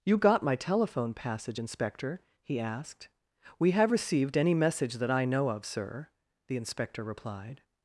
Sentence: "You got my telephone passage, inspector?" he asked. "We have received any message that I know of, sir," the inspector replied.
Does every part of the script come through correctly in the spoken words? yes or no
yes